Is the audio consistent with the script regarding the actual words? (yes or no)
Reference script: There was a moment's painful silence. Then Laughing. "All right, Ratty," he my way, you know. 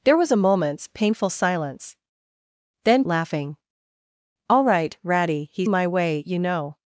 yes